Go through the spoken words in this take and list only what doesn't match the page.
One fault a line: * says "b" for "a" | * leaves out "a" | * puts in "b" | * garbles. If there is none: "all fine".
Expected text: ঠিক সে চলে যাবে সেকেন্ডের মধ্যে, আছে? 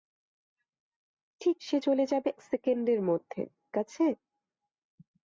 all fine